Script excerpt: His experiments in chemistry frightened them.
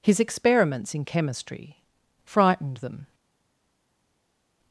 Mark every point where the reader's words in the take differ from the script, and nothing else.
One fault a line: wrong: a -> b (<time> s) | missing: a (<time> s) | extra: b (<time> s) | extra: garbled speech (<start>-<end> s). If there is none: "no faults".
no faults